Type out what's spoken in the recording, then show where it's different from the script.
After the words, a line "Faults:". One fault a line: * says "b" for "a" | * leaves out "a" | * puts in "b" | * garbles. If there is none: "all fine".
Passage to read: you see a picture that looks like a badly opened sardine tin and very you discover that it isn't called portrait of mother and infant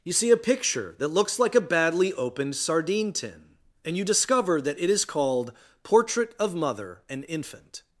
you see a picture that looks like a badly opened sardine tin and you discover that it is called portrait of mother and infant
Faults:
* leaves out "very"
* says "is" for "isn't"